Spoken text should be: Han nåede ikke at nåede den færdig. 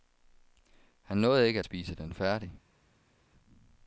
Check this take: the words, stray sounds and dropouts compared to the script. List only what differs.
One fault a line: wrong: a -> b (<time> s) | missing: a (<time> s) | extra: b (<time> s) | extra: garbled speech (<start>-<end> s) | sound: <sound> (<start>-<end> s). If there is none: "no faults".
wrong: nåede -> spise (1.6 s)